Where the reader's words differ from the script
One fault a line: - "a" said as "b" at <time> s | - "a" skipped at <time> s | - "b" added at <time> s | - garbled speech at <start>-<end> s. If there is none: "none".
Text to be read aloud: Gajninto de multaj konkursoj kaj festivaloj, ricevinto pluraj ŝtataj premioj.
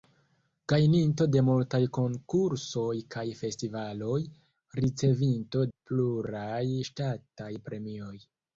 none